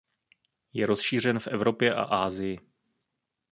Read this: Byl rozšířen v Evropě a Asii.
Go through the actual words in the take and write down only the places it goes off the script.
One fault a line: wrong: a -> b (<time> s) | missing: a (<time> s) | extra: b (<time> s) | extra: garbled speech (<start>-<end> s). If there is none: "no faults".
wrong: Byl -> Je (0.7 s)